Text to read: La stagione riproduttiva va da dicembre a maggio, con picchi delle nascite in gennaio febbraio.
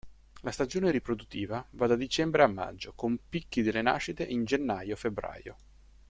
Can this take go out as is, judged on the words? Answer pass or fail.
pass